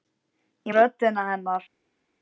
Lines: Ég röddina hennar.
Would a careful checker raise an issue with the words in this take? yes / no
no